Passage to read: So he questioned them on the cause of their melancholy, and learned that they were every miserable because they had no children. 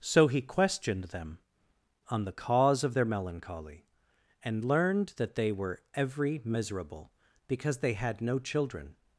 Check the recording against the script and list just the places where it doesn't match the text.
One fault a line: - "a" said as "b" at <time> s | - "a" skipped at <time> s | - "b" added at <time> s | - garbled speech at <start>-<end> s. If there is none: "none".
none